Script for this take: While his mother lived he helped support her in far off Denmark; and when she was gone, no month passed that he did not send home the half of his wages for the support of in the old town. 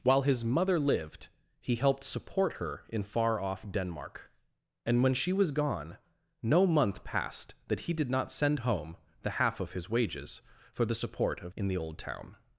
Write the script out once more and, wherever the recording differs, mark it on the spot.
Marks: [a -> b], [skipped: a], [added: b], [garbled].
While his mother lived he helped support her in far off Denmark; and when she was gone, no month passed that he did not send home the half of his wages for the support of in the old town.